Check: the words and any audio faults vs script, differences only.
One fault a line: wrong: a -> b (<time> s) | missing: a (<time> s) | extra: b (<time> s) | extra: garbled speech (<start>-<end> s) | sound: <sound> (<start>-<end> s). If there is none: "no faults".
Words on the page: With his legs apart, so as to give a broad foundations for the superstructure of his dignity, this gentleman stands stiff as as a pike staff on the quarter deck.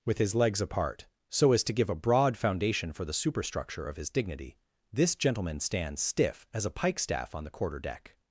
wrong: foundations -> foundation (2.4 s)
missing: as (6.7 s)